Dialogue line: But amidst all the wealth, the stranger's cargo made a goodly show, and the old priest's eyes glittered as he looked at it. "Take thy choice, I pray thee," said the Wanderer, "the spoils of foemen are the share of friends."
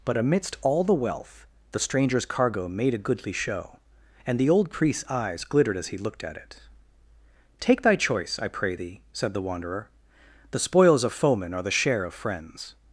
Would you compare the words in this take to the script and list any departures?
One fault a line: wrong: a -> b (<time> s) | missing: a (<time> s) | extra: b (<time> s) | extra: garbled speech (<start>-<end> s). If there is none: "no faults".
no faults